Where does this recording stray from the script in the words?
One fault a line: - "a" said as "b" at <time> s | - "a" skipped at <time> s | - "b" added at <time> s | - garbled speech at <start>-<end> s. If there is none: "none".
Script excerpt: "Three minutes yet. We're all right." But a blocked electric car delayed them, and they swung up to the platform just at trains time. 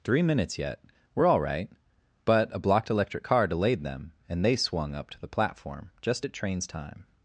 none